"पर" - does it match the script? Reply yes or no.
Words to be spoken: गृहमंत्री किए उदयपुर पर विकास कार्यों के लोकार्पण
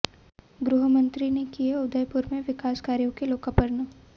no